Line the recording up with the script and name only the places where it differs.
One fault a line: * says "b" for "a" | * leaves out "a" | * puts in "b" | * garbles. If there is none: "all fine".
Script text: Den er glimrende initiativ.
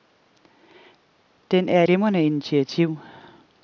all fine